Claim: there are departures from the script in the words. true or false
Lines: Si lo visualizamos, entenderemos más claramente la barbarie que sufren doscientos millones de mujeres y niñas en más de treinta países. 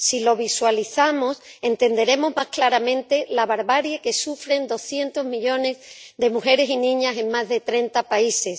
false